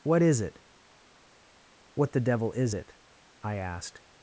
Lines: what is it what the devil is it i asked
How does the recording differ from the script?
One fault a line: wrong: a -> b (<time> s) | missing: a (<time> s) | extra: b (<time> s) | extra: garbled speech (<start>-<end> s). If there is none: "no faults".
no faults